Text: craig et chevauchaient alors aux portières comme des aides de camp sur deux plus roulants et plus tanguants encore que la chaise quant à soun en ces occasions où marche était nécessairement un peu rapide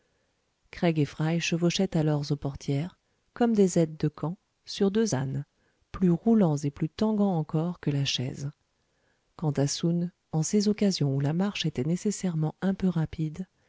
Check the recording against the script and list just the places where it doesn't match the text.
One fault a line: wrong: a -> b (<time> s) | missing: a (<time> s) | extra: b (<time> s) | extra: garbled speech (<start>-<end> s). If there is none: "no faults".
extra: fry (1.1 s)
extra: ânes (5.1 s)
extra: la (11.2 s)